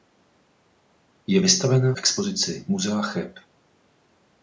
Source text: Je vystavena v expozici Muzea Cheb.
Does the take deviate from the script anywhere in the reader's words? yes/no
yes